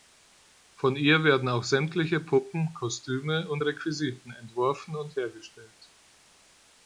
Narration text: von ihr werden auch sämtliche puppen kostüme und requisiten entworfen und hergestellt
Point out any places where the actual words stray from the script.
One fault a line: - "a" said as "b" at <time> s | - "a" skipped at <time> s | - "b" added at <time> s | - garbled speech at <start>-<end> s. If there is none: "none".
none